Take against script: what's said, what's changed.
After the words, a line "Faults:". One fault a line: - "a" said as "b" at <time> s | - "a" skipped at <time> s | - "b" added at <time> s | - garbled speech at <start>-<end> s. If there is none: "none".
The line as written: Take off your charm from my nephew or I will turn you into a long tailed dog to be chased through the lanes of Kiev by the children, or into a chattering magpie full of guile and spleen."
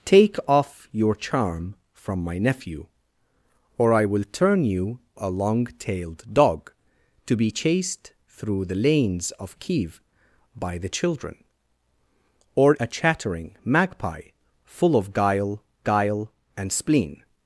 Take off your charm from my nephew or I will turn you a long tailed dog to be chased through the lanes of Kiev by the children, or a chattering magpie full of guile guile and spleen."
Faults:
- "into" skipped at 5.0 s
- "into" skipped at 12.7 s
- "guile" added at 15.8 s